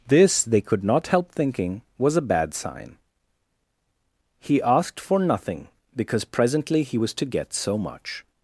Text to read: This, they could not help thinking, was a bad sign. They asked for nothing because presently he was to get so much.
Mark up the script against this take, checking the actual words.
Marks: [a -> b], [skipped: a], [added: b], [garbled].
This, they could not help thinking, was a bad sign. [They -> He] asked for nothing because presently he was to get so much.